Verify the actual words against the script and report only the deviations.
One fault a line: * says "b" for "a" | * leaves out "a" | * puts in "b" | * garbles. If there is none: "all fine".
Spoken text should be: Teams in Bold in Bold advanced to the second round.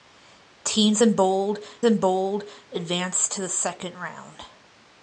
all fine